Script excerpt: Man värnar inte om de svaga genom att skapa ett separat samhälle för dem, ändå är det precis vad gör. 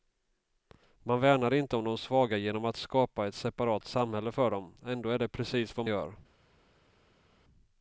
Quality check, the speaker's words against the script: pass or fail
pass